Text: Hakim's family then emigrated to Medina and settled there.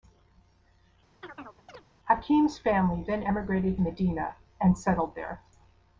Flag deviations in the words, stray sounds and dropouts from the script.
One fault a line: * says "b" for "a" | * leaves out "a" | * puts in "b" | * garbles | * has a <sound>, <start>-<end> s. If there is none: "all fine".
* has a chirp, 1.2-1.9 s
* leaves out "to"